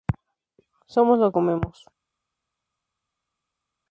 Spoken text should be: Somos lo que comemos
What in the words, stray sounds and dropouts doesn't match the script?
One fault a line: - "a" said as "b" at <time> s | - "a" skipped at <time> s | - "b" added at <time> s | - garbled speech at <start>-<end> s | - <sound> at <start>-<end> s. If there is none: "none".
- "que" skipped at 1.3 s